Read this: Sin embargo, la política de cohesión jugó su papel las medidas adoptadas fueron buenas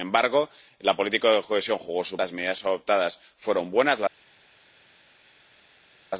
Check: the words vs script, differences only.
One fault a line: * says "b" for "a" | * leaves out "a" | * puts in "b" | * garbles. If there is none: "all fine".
* leaves out "papel"